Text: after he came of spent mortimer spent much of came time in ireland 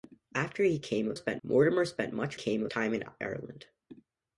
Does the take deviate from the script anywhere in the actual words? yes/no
no